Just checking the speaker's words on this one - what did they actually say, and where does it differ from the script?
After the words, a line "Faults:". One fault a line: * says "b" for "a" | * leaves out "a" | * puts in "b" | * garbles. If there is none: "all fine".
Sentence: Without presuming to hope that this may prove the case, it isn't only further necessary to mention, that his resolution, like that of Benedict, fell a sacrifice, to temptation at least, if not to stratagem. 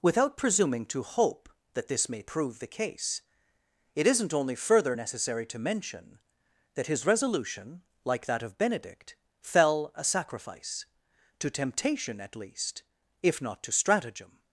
Without presuming to hope that this may prove the case, it isn't only further necessary to mention, that his resolution, like that of Benedict, fell a sacrifice, to temptation at least, if not to stratagem.
Faults:
all fine